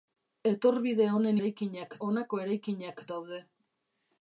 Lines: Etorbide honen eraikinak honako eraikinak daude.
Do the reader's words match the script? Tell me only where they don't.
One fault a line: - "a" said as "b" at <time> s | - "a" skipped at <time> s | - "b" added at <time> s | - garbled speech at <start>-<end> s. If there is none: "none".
none